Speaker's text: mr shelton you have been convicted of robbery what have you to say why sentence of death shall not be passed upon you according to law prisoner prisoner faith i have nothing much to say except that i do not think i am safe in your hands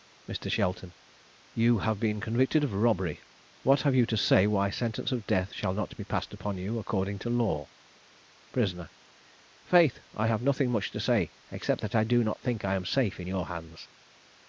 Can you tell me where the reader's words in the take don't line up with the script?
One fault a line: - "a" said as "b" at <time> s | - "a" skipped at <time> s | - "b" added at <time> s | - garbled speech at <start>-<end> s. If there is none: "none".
- "prisoner" skipped at 8.9 s